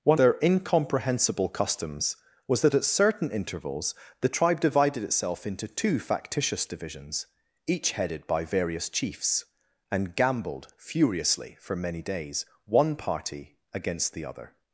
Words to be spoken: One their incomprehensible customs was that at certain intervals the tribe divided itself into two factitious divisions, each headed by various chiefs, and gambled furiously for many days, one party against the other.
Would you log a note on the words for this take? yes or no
no